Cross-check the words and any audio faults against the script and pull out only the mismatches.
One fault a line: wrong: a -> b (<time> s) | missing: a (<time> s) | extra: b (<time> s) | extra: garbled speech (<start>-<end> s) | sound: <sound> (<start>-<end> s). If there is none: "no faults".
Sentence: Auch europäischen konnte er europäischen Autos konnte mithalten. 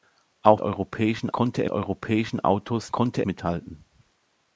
no faults